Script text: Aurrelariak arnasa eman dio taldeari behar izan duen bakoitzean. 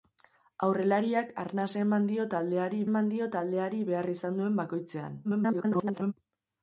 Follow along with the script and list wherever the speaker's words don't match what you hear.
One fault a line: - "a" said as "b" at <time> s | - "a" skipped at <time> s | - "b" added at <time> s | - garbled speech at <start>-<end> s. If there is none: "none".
- "eman dio taldeari" added at 2.9 s
- garbled speech at 5.2-6.1 s